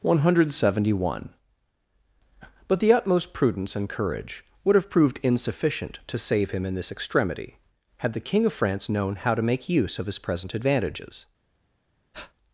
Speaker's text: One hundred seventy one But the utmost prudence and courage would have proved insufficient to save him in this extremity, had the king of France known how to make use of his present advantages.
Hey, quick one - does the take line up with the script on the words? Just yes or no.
yes